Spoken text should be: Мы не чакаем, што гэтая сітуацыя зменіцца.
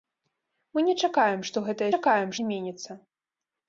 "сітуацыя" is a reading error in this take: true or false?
true